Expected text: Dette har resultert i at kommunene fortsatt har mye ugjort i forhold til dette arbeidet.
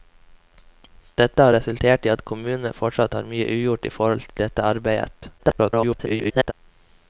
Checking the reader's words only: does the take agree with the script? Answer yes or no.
no